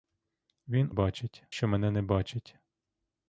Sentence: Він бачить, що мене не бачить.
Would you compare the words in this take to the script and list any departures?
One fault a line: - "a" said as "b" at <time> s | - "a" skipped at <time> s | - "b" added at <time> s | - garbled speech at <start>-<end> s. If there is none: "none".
none